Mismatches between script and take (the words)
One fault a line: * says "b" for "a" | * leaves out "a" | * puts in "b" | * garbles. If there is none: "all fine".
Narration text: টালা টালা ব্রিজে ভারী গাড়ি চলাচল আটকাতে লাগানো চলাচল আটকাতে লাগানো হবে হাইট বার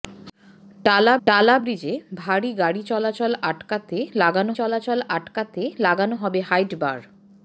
all fine